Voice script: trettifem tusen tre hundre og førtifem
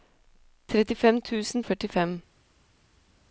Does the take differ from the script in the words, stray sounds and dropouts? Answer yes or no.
yes